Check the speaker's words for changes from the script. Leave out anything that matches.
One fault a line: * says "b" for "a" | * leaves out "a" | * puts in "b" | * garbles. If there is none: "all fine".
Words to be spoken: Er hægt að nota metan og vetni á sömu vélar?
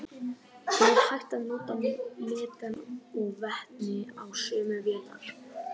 all fine